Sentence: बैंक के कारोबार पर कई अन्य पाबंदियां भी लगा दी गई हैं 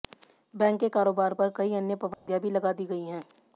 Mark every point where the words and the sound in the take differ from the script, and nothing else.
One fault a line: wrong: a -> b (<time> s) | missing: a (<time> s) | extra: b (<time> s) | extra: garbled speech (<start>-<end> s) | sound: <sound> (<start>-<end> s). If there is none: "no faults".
sound: dropout (2.1-2.3 s)